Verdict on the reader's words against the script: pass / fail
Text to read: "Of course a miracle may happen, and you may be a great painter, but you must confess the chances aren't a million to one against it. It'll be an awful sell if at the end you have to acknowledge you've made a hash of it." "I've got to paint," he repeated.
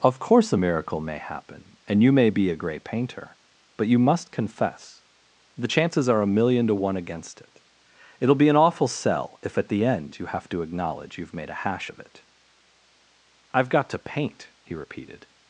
fail